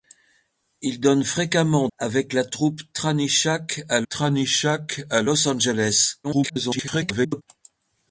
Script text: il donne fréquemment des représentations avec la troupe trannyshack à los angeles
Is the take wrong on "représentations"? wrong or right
wrong